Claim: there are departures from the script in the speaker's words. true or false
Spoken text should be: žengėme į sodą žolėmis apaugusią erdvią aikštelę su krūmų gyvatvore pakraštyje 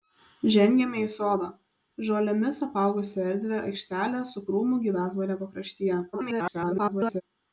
true